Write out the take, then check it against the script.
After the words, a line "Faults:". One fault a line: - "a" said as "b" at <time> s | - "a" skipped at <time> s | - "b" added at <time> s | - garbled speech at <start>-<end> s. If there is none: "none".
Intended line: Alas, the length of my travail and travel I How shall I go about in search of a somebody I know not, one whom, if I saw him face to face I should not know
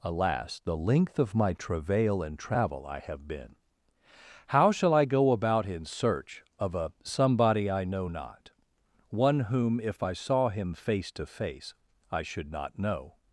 Alas, the length of my travail and travel I have been How shall I go about in search of a somebody I know not, one whom, if I saw him face to face I should not know
Faults:
- "have been" added at 3.0 s